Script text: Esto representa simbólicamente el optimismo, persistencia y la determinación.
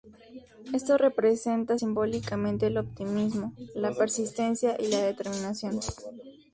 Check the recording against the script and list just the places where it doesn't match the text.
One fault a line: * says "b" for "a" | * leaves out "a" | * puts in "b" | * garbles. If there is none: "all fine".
* puts in "la"